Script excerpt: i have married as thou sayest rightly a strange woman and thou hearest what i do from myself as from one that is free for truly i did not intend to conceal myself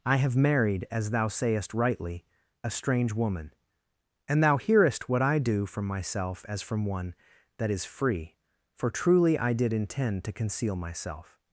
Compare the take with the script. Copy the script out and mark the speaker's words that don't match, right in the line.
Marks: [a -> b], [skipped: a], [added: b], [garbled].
i have married as thou sayest rightly a strange woman and thou hearest what i do from myself as from one that is free for truly i did [skipped: not] intend to conceal myself